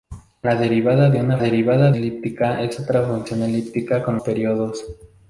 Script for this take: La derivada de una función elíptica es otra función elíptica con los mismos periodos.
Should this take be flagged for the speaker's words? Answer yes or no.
yes